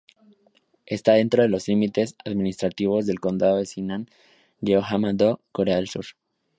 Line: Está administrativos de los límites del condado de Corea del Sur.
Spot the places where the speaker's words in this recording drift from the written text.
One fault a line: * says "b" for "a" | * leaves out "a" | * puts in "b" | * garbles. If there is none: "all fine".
* says "dentro" for "administrativos"
* puts in "administrativos"
* puts in "Sinan Jeollanam do"